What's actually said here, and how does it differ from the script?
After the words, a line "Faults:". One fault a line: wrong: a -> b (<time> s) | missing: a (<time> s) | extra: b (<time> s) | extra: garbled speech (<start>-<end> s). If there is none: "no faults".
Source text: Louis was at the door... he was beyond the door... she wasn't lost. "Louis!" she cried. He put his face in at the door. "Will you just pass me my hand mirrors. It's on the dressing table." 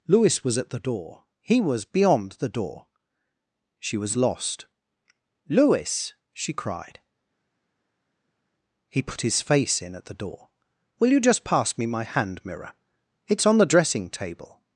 Louis was at the door... he was beyond the door... she was lost. "Louis!" she cried. He put his face in at the door. "Will you just pass me my hand mirror. It's on the dressing table."
Faults:
wrong: wasn't -> was (4.0 s)
wrong: mirrors -> mirror (12.4 s)